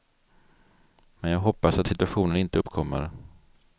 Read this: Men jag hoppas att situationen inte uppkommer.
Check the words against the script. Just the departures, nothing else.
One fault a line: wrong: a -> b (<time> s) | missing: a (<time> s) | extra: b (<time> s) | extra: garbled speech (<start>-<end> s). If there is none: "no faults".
no faults